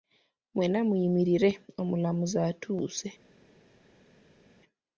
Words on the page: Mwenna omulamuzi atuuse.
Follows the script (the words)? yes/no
no